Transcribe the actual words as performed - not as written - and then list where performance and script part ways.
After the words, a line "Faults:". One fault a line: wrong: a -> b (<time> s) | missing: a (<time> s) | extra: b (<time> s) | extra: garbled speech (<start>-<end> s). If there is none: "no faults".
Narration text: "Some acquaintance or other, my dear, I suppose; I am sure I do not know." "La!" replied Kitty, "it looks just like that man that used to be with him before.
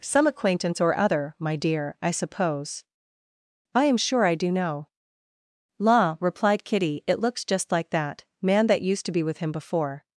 "Some acquaintance or other, my dear, I suppose; I am sure I do know." "La!" replied Kitty, "it looks just like that man that used to be with him before.
Faults:
missing: not (4.5 s)